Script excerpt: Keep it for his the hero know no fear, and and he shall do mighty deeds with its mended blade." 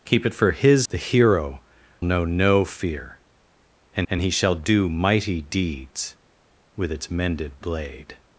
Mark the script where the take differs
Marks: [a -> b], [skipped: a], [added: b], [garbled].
Keep it for his the hero know no fear, and and he shall do mighty deeds with its mended blade."